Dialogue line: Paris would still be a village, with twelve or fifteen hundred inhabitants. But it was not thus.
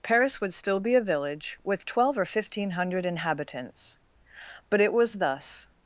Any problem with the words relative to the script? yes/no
yes